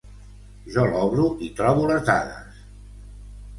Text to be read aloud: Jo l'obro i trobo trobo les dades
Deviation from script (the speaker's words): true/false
true